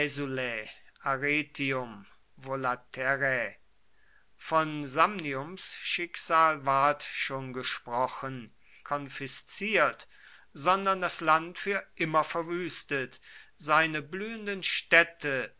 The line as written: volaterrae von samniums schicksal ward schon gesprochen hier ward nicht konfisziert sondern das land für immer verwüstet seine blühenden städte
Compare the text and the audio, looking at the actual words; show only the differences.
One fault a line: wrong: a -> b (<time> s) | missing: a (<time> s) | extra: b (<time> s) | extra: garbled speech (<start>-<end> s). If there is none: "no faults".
missing: hier ward nicht (8.5 s)